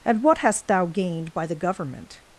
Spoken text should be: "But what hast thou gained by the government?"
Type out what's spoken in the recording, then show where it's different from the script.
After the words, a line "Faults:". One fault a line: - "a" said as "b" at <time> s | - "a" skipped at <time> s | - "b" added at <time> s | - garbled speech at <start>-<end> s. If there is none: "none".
"And what hast thou gained by the government?"
Faults:
- "But" said as "And" at 0.0 s